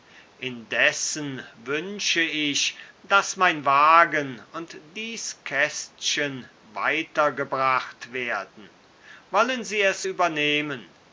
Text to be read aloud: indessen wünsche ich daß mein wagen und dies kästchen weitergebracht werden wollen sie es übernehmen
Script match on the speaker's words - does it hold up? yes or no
yes